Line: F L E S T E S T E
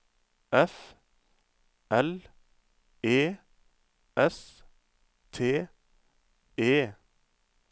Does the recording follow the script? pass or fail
fail